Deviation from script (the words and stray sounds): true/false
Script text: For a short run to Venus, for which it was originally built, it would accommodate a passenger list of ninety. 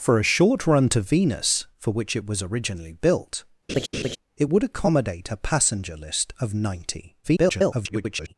true